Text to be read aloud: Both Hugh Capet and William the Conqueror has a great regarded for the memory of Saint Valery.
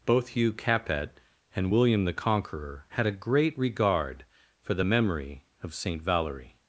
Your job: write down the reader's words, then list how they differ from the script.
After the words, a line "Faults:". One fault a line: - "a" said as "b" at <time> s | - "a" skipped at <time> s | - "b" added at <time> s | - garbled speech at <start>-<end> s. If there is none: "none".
Both Hugh Capet and William the Conqueror had a great regard for the memory of Saint Valery.
Faults:
- "has" said as "had" at 2.9 s
- "regarded" said as "regard" at 3.6 s